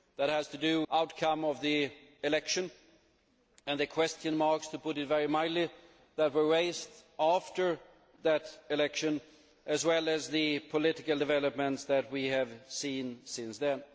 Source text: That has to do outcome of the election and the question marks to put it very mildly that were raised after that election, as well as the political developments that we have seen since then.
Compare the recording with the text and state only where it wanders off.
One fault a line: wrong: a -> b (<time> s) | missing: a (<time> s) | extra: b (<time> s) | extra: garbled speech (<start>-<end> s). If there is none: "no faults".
no faults